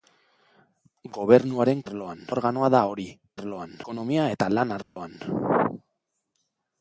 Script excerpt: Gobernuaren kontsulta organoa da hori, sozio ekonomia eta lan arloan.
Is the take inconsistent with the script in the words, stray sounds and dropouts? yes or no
yes